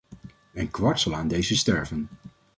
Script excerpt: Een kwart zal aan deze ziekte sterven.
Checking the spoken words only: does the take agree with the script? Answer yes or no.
no